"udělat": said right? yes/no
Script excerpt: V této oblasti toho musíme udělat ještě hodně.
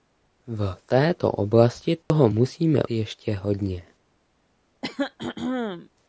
no